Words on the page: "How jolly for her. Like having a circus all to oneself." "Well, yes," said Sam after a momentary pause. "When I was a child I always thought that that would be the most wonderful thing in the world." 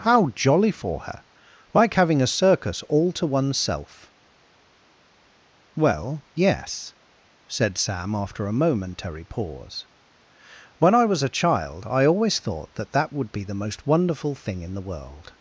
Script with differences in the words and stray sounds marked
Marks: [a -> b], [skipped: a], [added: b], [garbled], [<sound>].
"How jolly for her. Like having a circus all to oneself." "Well, yes," said Sam after a momentary pause. "When I was a child I always thought that that would be the most wonderful thing in the world."